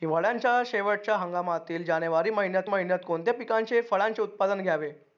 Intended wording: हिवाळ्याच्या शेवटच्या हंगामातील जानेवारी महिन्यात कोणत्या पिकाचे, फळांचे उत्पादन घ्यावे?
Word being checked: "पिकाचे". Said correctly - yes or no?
yes